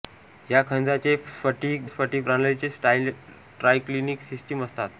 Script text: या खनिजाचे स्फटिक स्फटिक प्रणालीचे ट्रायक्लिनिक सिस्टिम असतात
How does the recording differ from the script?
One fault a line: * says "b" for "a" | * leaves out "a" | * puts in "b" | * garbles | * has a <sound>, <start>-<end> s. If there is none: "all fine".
all fine